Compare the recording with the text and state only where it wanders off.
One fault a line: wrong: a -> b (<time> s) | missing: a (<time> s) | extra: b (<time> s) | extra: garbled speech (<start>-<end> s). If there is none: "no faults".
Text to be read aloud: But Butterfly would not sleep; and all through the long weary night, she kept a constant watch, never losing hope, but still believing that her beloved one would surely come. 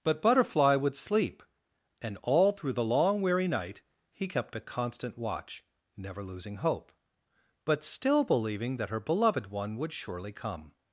missing: not (0.9 s)
wrong: she -> he (4.1 s)